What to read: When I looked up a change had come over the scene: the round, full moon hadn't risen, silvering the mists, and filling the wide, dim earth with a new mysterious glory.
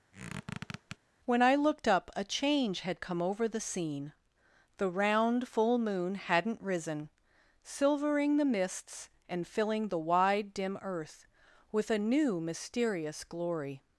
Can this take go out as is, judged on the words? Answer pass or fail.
pass